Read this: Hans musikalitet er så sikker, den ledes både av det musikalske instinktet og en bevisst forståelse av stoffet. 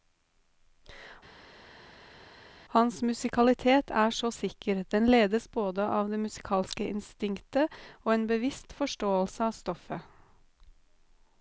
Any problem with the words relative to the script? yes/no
no